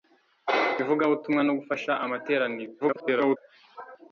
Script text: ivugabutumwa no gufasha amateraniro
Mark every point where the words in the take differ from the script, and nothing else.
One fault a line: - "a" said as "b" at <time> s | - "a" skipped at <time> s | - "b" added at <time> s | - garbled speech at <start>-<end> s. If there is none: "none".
- garbled speech at 2.8-3.4 s